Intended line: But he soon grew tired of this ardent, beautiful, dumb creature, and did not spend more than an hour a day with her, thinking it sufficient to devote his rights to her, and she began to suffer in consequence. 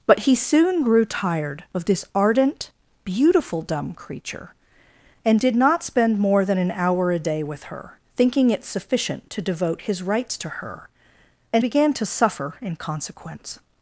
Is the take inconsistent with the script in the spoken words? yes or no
yes